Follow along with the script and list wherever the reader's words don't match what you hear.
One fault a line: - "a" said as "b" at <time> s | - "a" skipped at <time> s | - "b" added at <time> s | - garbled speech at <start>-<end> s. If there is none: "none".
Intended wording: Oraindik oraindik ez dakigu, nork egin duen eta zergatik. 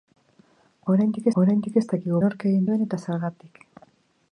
none